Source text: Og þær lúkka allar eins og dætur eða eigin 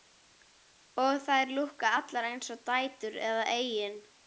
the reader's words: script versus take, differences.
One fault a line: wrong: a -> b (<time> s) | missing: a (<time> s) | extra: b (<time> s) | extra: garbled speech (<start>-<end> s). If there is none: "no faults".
no faults